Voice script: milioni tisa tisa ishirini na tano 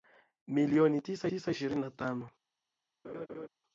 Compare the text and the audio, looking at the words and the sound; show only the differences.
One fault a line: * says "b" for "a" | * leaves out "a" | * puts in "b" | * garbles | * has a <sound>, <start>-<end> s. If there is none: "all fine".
* has a laugh, 3.0-3.5 s